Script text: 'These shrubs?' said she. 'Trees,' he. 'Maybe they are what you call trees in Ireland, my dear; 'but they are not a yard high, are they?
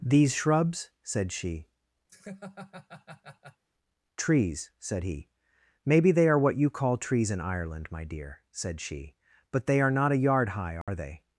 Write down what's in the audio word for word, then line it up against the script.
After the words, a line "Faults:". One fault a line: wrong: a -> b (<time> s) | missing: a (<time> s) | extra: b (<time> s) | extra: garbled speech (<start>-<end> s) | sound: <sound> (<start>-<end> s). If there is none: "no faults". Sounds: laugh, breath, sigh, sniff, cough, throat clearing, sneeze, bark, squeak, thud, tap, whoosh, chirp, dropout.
'These shrubs?' said she. 'Trees,' said he. 'Maybe they are what you call trees in Ireland, my dear,' said she; 'but they are not a yard high, are they?
Faults:
sound: laugh (2.1-3.6 s)
extra: said (4.8 s)
extra: said she (8.5 s)
sound: dropout (10.8-10.9 s)